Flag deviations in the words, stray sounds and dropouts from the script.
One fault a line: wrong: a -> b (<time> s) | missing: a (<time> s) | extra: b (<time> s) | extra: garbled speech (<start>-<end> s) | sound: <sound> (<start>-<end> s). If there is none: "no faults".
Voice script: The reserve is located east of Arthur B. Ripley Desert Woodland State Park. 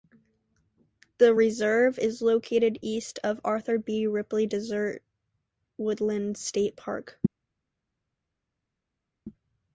no faults